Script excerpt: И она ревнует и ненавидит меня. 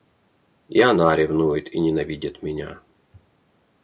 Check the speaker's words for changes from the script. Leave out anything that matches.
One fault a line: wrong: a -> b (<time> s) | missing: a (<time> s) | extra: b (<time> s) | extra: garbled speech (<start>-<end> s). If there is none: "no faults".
no faults